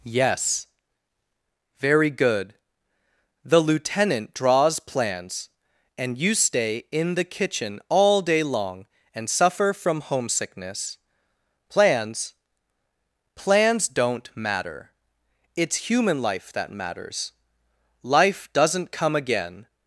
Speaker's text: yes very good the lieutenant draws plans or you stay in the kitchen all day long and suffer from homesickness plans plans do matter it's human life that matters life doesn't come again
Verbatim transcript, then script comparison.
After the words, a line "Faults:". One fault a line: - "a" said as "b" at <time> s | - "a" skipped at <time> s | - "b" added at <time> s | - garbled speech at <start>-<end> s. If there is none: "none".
yes very good the lieutenant draws plans and you stay in the kitchen all day long and suffer from homesickness plans plans don't matter it's human life that matters life doesn't come again
Faults:
- "or" said as "and" at 6.0 s
- "do" said as "don't" at 13.9 s